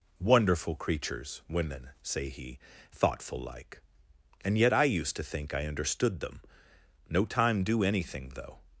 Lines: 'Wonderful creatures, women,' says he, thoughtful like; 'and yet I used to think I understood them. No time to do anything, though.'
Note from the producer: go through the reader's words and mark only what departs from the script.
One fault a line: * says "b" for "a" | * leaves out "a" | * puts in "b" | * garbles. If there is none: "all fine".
* says "say" for "says"
* leaves out "to"